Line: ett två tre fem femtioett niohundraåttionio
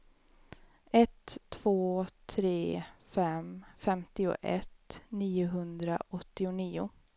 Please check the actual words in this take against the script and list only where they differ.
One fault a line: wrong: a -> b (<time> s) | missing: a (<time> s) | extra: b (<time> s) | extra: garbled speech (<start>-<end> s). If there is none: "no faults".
no faults